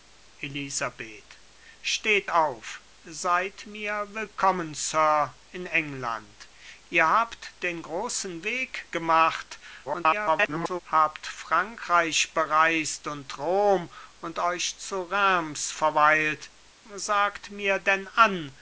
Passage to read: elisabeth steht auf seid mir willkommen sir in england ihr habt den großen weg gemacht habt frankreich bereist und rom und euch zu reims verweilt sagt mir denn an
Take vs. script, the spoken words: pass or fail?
fail